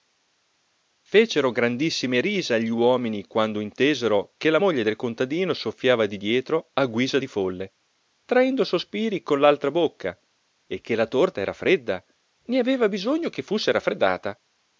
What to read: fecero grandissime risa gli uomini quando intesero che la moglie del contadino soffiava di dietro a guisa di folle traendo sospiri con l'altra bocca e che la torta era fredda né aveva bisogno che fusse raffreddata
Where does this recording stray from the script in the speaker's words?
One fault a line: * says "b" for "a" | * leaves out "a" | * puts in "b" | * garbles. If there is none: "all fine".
all fine